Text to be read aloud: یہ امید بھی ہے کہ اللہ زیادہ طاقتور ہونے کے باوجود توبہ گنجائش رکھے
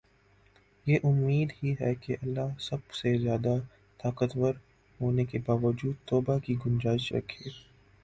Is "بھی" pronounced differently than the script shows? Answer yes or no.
yes